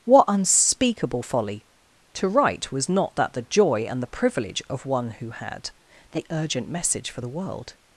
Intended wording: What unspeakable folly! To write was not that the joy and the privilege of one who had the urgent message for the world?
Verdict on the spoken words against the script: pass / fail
pass